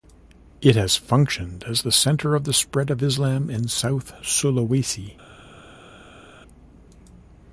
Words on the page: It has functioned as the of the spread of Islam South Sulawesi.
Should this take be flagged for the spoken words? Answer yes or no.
yes